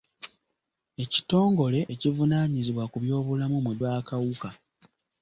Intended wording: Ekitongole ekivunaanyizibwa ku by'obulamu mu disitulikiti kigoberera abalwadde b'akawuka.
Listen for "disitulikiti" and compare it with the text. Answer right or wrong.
wrong